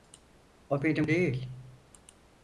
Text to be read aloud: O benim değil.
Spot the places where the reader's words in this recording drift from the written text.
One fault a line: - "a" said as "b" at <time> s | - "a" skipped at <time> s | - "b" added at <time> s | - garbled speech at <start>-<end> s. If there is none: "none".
none